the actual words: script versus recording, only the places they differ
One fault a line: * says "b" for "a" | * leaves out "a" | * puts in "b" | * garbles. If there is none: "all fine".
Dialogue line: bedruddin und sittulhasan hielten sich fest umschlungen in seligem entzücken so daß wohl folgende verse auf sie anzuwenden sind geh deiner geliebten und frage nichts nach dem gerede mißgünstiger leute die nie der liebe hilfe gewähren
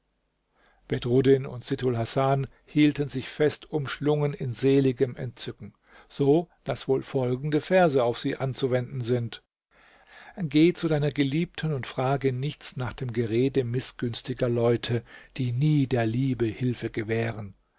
* puts in "zu"